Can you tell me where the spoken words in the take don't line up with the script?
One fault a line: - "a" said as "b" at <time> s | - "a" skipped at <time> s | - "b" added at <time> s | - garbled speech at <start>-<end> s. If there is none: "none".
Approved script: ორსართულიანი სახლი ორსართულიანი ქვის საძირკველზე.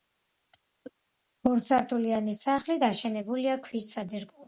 - "ორსართულიანი" said as "დაშენებულია" at 2.8 s